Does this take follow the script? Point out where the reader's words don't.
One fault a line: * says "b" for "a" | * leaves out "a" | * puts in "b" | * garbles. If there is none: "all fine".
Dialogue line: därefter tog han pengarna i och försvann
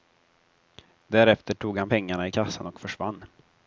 * puts in "kassan"